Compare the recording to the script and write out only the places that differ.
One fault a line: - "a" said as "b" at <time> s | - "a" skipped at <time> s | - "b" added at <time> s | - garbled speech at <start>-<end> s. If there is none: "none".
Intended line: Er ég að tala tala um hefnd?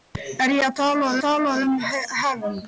none